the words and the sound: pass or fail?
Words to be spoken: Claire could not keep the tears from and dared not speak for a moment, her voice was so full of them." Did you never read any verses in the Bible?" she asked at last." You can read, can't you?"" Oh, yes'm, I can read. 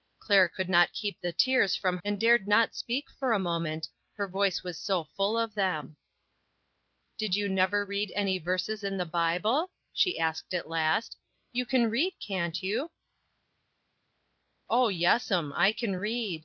pass